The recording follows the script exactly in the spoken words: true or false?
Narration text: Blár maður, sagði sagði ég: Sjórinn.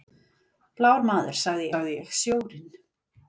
true